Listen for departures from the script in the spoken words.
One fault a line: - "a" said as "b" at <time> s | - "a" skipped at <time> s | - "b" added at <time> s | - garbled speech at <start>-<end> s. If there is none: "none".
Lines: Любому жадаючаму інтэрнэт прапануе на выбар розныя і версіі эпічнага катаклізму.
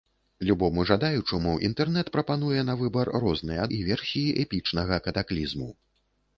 none